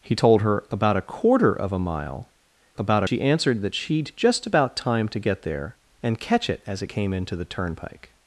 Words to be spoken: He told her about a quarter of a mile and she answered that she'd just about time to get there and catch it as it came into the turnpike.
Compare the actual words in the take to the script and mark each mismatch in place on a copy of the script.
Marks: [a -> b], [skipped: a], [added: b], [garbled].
He told her about a quarter of a mile [and -> about] she answered that she'd just about time to get there and catch it as it came into the turnpike.